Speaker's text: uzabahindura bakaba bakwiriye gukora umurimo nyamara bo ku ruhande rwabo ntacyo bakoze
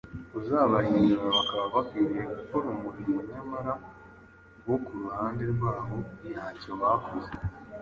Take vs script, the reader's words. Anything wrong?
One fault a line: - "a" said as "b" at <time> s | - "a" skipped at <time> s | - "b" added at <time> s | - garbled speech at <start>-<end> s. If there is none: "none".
none